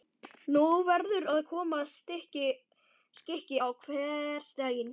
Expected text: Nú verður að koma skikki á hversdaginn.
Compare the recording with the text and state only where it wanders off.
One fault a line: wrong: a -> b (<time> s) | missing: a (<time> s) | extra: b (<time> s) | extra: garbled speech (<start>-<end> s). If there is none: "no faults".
no faults